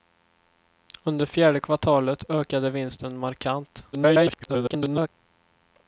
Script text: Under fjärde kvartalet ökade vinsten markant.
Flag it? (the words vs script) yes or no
yes